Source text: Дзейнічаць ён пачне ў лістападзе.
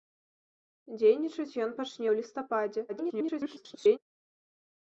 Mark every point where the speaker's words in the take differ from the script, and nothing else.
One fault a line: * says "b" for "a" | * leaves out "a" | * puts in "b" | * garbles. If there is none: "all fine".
* garbles